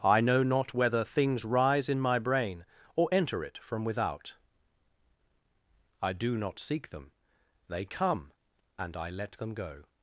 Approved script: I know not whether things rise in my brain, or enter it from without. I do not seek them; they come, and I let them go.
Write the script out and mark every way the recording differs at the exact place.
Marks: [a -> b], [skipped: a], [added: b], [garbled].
I know not whether things rise in my brain, or enter it from without. I do not seek them; they come, and I let them go.